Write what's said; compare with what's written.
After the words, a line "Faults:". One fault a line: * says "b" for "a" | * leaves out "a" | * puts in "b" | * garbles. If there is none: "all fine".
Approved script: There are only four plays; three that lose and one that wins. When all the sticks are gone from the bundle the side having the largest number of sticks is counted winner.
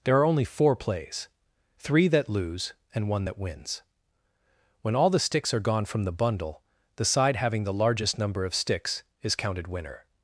There are only four plays; three that lose and one that wins. When all the sticks are gone from the bundle the side having the largest number of sticks is counted winner.
Faults:
all fine